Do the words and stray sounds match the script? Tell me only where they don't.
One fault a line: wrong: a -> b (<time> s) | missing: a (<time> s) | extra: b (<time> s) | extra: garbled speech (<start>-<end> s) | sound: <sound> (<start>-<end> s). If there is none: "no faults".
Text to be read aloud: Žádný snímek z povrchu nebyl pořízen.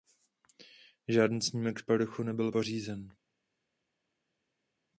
no faults